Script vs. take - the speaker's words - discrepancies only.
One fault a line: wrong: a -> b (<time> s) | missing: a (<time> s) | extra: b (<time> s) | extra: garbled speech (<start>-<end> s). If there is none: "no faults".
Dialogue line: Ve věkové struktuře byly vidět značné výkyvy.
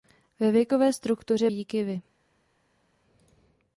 missing: byly vidět značné (1.5 s)